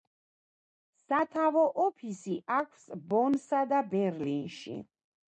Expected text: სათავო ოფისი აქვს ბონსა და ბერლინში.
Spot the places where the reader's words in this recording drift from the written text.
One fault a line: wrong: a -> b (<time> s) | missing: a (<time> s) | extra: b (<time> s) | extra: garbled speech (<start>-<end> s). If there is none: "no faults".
no faults